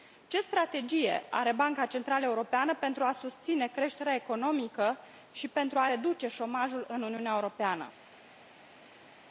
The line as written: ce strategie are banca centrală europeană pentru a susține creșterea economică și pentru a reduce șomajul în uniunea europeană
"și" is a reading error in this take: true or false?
false